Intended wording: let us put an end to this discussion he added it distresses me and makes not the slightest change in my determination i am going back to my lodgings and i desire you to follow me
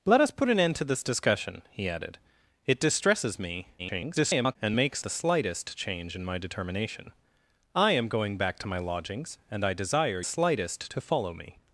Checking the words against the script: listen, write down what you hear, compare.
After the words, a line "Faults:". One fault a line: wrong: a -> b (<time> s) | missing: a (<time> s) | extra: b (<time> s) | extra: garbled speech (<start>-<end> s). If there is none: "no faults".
let us put an end to this discussion he added it distresses me [garbled] and makes the slightest change in my determination i am going back to my lodgings and i desire slightest to follow me
Faults:
extra: garbled speech (3.8-4.6 s)
missing: not (5.0 s)
wrong: you -> slightest (10.2 s)